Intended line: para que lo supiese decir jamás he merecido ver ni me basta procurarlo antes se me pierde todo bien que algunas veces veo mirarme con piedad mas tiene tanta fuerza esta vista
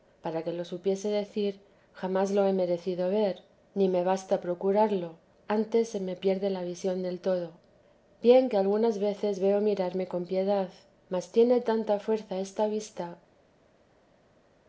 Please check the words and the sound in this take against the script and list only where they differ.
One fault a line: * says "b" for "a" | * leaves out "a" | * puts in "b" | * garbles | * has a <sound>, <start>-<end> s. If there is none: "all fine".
* puts in "lo"
* puts in "la visión del"